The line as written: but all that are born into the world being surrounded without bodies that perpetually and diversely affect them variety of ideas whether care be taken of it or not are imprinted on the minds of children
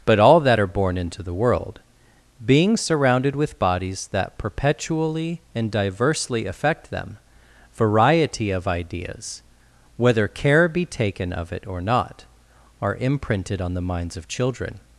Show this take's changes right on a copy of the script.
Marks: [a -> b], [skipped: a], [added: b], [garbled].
but all that are born into the world being surrounded [without -> with] bodies that perpetually and diversely affect them variety of ideas whether care be taken of it or not are imprinted on the minds of children